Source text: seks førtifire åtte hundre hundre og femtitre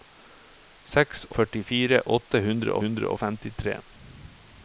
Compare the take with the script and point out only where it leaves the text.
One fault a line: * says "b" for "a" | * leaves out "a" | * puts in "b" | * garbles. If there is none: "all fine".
all fine